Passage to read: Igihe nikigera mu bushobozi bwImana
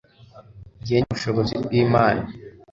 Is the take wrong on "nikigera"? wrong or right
wrong